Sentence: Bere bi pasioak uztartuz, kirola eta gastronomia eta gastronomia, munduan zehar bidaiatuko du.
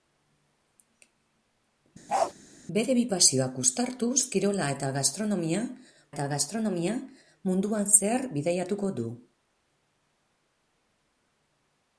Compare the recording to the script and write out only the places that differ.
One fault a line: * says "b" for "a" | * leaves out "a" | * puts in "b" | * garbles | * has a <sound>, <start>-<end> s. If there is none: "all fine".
* has a bark, 2.1-2.3 s